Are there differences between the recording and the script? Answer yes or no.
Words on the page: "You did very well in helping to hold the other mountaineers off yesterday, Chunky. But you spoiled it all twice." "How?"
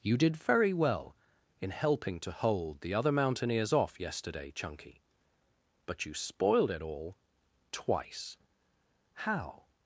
no